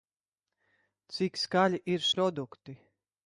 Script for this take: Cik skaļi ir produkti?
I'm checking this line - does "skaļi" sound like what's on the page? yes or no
yes